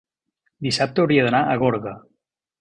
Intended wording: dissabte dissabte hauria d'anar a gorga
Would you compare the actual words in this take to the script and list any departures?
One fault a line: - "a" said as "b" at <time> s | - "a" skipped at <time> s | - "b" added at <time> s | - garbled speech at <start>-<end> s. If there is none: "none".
- "dissabte" skipped at 1.0 s